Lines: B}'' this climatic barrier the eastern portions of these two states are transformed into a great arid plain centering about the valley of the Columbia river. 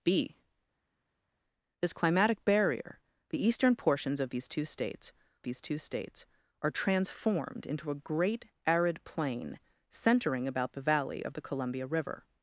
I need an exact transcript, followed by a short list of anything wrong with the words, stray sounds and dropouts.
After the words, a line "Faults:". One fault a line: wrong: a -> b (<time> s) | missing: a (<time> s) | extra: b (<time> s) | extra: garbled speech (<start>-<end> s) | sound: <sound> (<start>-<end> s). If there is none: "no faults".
B}'' this climatic barrier the eastern portions of these two states these two states are transformed into a great arid plain centering about the valley of the Columbia river.
Faults:
extra: these two states (5.4 s)